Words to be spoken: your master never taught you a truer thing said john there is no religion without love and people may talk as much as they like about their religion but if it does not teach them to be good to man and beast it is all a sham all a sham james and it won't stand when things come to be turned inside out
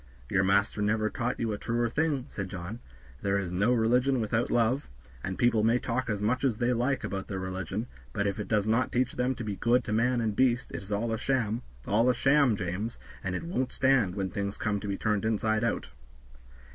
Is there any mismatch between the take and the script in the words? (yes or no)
no